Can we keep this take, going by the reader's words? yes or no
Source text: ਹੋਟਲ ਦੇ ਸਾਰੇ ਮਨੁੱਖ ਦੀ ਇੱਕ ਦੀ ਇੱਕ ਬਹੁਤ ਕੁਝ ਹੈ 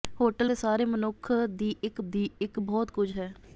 yes